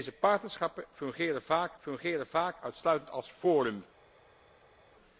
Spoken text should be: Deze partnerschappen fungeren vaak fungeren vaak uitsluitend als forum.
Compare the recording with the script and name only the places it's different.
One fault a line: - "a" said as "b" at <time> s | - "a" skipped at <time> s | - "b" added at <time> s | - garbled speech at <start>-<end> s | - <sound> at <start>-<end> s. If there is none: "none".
none